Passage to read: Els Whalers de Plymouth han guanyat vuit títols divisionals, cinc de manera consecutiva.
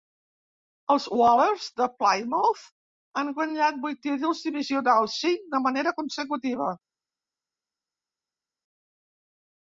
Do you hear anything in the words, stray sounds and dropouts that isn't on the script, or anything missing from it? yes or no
no